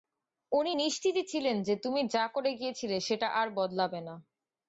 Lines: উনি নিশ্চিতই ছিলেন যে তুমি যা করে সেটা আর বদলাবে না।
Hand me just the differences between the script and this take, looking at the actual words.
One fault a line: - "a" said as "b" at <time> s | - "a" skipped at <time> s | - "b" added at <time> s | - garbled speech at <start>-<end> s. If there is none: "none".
- "গিয়েছিলে" added at 2.5 s